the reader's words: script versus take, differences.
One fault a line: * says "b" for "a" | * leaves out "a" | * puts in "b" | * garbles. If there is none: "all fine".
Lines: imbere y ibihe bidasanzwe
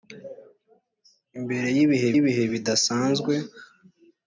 * puts in "ibihe"